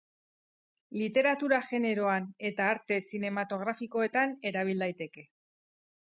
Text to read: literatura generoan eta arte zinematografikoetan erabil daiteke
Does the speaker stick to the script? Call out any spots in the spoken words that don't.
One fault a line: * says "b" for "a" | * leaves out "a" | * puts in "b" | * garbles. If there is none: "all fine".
all fine